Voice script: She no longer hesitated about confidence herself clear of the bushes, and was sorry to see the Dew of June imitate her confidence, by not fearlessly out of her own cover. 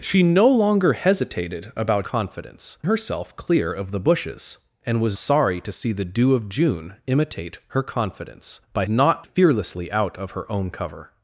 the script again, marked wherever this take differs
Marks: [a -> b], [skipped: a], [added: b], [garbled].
She no longer hesitated about confidence herself clear of the bushes, and was sorry to see the Dew of June imitate her confidence, by not fearlessly out of her own cover.